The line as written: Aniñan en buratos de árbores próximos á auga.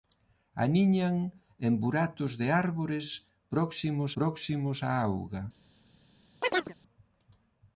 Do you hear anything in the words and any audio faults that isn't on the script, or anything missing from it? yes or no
yes